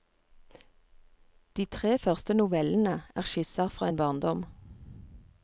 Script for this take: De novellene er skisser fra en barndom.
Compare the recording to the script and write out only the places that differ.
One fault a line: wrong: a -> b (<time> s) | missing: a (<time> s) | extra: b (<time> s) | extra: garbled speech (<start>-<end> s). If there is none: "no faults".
extra: tre første (1.6 s)